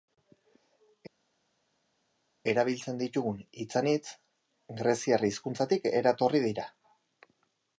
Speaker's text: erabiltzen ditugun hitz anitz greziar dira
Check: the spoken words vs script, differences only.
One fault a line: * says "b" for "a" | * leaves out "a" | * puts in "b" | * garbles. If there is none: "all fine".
* puts in "hizkuntzatik eratorri"